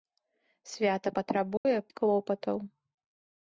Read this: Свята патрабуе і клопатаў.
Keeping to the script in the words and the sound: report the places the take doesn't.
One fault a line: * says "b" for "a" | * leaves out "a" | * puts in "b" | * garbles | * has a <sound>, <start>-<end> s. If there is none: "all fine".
* has a dropout, 1.6-1.7 s